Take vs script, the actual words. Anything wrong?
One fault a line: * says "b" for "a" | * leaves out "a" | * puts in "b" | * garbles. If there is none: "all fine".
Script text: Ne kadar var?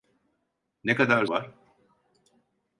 all fine